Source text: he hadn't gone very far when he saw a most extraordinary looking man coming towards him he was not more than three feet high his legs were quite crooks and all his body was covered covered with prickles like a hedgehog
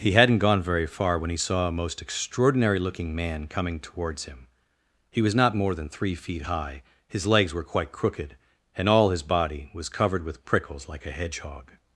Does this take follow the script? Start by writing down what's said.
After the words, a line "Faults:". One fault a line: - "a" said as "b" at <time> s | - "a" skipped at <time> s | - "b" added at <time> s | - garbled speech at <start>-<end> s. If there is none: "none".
he hadn't gone very far when he saw a most extraordinary looking man coming towards him he was not more than three feet high his legs were quite crooked and all his body was covered with prickles like a hedgehog
Faults:
- "crooks" said as "crooked" at 7.9 s
- "covered" skipped at 10.2 s